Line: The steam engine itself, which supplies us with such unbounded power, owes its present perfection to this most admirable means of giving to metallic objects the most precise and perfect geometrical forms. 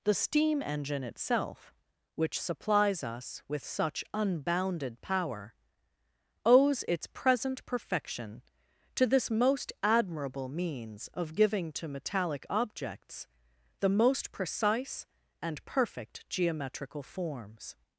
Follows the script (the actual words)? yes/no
yes